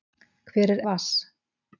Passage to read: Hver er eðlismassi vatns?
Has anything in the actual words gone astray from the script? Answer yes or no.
yes